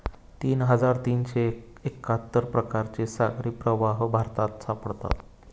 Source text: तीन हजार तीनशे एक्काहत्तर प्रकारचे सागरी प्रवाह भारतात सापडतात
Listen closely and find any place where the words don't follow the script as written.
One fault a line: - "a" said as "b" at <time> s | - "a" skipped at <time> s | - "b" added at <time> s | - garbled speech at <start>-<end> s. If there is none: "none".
none